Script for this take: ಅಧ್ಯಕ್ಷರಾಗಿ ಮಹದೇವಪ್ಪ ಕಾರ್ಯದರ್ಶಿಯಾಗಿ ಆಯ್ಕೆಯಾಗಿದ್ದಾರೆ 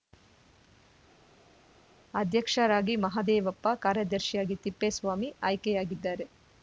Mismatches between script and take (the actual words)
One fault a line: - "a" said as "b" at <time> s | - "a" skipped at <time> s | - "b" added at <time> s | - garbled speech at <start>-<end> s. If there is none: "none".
- "ತಿಪ್ಪೇಸ್ವಾಮಿ" added at 4.6 s